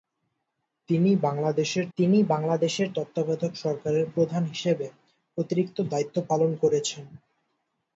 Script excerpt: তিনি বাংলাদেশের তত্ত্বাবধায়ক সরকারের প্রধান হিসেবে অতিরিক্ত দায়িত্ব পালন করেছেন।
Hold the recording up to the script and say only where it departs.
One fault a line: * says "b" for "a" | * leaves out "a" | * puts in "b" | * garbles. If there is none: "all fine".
* puts in "তিনি বাংলাদেশের"